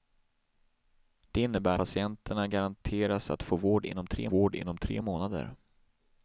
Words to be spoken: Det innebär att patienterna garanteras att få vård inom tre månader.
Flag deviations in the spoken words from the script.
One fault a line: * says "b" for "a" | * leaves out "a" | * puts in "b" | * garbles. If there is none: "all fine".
* leaves out "att"
* puts in "vård inom tre"